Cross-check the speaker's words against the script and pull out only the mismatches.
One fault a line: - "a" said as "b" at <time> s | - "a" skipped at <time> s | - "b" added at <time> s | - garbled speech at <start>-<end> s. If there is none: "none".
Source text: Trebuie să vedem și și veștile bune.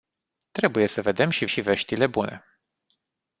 none